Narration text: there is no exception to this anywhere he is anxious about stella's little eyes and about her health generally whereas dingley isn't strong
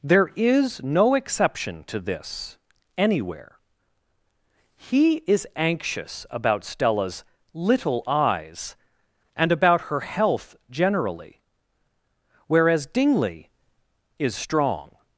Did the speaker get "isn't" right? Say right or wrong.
wrong